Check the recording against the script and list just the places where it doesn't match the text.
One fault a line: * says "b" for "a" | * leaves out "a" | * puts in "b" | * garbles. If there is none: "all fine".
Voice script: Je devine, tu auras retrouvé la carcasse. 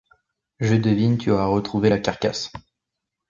all fine